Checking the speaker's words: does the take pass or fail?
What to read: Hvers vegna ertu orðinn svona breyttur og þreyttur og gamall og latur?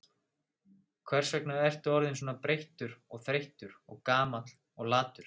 pass